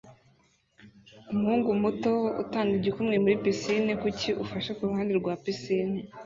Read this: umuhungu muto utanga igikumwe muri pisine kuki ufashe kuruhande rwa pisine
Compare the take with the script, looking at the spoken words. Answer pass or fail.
pass